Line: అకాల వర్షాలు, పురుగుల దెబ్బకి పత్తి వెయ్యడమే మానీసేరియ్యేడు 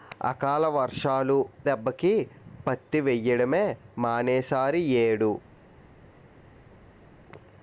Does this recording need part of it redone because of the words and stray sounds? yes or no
yes